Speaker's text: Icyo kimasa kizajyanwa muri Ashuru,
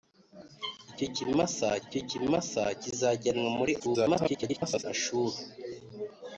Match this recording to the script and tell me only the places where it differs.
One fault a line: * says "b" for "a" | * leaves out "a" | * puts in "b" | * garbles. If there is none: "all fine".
* puts in "icyo kimasa"
* garbles